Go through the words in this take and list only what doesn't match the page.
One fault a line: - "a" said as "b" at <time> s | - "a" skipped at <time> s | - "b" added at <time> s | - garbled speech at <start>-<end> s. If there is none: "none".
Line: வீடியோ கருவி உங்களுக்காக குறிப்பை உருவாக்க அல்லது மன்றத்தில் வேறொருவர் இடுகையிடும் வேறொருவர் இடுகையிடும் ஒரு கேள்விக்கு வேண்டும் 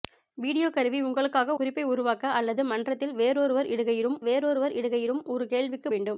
none